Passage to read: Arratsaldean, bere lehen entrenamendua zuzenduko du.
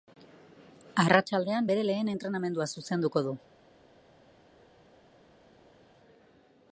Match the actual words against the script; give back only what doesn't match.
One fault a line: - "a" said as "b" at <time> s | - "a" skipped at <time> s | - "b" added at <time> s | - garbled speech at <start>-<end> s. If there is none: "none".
none